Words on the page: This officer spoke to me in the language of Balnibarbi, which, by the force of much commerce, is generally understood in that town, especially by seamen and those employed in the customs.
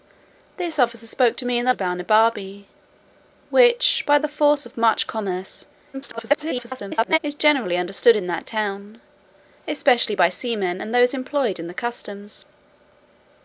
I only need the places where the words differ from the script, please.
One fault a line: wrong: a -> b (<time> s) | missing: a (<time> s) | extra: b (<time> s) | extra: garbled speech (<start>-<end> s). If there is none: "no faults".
missing: language (1.7 s)
extra: garbled speech (5.9-7.2 s)